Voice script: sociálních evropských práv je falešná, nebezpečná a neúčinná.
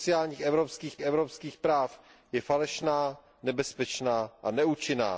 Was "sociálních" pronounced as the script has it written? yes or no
yes